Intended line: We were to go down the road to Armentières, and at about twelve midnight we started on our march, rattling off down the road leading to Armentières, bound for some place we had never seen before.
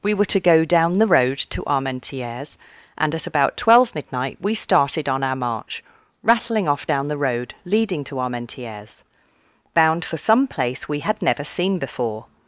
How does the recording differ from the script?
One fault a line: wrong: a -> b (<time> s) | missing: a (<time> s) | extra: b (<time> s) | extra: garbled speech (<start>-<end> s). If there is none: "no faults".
no faults